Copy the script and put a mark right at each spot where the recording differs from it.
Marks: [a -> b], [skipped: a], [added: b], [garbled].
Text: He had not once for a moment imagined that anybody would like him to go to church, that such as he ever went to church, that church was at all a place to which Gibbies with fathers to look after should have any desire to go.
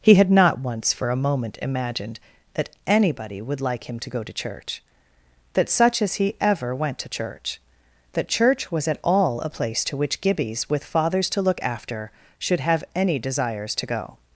He had not once for a moment imagined that anybody would like him to go to church, that such as he ever went to church, that church was at all a place to which Gibbies with fathers to look after should have any [desire -> desires] to go.